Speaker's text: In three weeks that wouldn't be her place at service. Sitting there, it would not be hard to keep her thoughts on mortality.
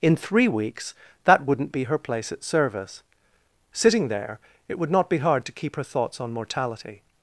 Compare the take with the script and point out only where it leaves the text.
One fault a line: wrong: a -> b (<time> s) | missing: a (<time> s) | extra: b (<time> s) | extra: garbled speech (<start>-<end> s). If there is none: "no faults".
no faults